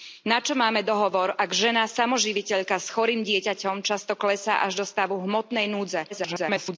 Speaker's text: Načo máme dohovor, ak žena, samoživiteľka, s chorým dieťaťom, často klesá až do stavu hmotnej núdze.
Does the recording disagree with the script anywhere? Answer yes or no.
yes